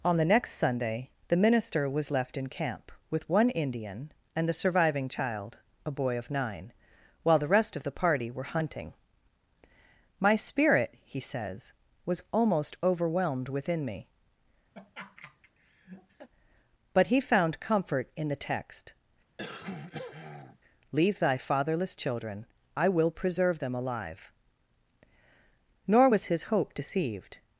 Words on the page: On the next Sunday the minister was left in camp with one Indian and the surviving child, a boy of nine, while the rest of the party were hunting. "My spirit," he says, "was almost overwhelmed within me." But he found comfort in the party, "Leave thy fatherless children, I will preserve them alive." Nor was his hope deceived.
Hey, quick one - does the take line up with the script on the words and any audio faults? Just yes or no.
no